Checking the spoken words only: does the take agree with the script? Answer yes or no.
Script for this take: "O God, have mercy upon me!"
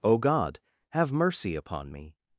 yes